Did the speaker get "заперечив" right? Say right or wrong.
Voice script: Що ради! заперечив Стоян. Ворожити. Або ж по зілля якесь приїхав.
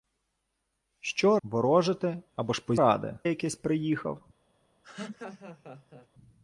wrong